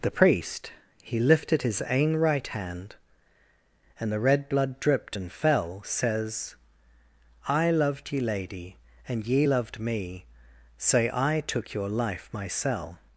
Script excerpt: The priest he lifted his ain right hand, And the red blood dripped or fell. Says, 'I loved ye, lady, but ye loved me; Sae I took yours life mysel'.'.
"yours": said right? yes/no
no